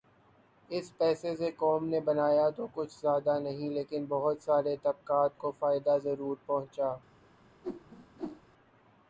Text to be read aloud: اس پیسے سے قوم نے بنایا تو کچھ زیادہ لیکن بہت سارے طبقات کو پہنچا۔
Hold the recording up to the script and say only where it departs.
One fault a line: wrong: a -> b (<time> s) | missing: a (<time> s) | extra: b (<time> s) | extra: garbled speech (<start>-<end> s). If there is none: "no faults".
extra: نہیں (3.4 s)
extra: فائدہ ضرور (5.5 s)